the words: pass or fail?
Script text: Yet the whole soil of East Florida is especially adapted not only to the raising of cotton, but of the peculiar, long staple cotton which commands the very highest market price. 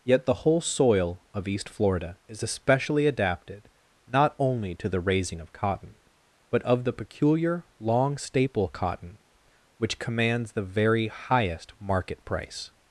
pass